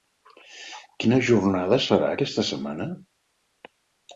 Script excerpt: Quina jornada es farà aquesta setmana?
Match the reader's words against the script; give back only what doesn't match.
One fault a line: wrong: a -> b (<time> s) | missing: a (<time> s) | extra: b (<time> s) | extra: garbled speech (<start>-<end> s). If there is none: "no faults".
no faults